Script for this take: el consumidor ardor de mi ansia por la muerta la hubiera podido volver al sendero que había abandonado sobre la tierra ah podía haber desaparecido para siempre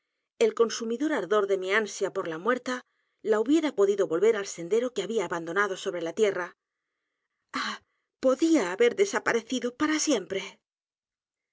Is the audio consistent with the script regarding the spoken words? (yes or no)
yes